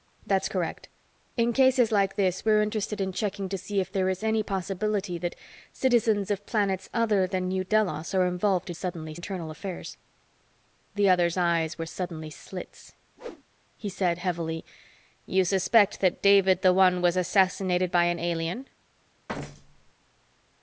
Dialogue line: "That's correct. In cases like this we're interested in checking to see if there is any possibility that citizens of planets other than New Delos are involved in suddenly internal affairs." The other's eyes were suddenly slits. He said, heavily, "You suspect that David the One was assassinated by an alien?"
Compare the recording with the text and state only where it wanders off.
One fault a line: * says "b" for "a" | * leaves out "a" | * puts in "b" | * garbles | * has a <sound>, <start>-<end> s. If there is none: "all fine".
* has a whoosh, 13.2-13.4 s
* has a thud, 19.3-19.9 s